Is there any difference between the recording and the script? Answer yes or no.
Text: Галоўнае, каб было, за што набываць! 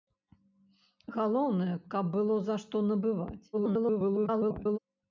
yes